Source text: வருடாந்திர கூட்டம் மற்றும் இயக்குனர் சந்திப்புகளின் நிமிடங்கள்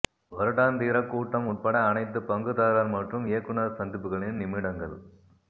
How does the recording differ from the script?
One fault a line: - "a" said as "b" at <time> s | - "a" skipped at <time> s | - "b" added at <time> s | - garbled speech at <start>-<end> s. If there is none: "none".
- "உட்பட அனைத்து பங்குதாரர்" added at 1.5 s